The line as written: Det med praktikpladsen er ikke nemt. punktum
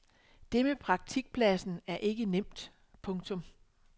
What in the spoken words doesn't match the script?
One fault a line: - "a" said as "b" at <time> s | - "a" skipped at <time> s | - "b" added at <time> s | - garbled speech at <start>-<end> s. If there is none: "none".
none